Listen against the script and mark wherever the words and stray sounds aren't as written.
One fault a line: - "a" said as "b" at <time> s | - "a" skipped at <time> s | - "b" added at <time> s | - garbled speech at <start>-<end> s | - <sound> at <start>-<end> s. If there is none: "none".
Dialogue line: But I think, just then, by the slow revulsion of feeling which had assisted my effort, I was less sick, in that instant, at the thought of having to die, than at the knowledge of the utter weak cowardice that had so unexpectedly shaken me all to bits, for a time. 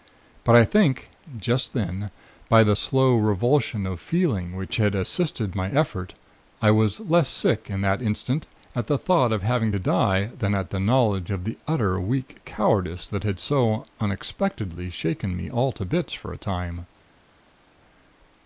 none